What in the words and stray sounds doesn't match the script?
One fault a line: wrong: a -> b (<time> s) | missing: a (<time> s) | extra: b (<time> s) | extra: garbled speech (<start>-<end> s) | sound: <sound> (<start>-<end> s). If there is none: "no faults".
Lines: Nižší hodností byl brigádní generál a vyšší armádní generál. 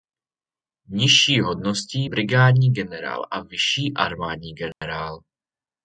missing: byl (2.1 s)
sound: dropout (4.7-4.8 s)